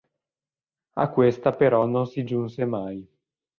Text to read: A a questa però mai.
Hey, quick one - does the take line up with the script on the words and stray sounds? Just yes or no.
no